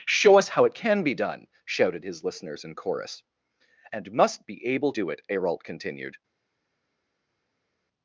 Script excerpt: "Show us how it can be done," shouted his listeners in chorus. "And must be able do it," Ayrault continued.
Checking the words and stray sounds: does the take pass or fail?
pass